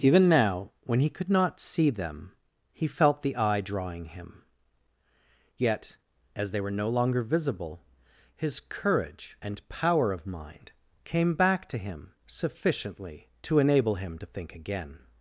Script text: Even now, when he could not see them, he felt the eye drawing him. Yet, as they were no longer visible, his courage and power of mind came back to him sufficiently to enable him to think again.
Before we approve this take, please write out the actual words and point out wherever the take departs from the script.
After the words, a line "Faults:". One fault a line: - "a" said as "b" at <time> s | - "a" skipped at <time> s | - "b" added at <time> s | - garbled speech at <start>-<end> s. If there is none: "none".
Even now, when he could not see them, he felt the eye drawing him. Yet, as they were no longer visible, his courage and power of mind came back to him sufficiently to enable him to think again.
Faults:
none